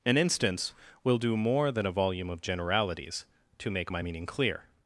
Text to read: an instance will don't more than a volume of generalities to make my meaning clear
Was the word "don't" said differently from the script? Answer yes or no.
yes